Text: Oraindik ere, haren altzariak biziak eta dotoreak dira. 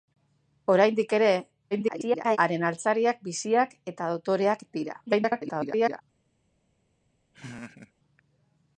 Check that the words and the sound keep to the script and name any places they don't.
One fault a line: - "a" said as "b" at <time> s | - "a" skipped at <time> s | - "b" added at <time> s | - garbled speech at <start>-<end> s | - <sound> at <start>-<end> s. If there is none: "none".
- garbled speech at 1.7-2.4 s
- garbled speech at 5.1-6.0 s
- laugh at 7.3-7.9 s